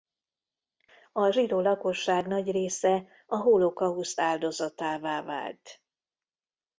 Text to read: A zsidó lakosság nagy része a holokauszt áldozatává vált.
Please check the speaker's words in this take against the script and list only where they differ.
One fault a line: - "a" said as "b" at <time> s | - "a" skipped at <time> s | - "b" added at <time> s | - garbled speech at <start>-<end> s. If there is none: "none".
none